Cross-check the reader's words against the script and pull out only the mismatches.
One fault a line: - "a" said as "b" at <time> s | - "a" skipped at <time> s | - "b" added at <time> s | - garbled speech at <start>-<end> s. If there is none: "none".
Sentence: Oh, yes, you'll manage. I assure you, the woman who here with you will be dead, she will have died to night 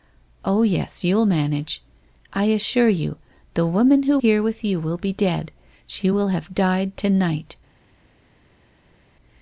none